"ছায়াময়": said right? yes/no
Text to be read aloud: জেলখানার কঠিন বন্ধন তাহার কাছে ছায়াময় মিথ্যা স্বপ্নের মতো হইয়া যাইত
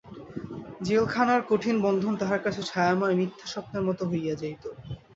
yes